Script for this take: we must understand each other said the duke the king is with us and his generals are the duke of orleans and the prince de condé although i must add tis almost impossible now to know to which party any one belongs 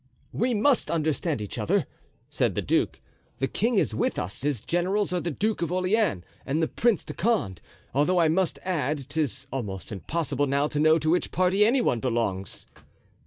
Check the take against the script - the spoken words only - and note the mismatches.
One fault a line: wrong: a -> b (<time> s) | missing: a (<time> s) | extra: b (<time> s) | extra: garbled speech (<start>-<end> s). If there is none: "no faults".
missing: and (4.4 s)